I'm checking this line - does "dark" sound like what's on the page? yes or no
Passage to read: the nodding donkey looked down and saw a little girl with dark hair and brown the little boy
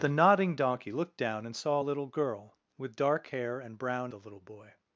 yes